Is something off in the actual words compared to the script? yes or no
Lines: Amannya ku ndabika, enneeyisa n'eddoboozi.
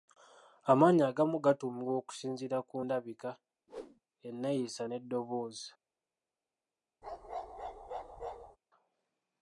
yes